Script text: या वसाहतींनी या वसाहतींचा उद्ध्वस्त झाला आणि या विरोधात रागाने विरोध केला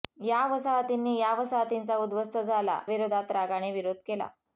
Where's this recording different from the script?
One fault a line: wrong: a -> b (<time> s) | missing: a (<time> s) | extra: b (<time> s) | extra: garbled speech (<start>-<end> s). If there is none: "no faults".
missing: आणि या (2.8 s)